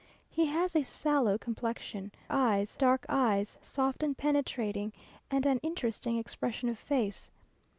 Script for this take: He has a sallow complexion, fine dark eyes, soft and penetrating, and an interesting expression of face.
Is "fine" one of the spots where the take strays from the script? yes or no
yes